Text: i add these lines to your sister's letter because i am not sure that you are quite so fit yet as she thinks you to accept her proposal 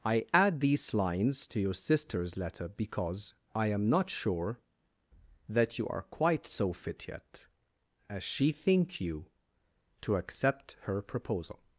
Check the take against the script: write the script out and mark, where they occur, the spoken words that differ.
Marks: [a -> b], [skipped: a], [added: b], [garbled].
i add these lines to your sister's letter because i am not sure that you are quite so fit yet as she [thinks -> think] you to accept her proposal